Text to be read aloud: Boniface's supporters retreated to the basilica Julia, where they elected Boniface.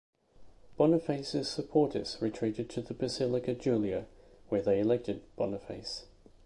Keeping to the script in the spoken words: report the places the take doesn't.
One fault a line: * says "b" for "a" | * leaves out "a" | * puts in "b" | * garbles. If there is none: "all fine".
all fine